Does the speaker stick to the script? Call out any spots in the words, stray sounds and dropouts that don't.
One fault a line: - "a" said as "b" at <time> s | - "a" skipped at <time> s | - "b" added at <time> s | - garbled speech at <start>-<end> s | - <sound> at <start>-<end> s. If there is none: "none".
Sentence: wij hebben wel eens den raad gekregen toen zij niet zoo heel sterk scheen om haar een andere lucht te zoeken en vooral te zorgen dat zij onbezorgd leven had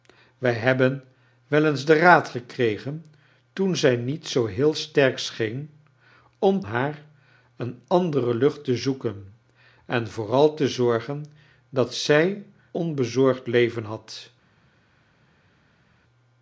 none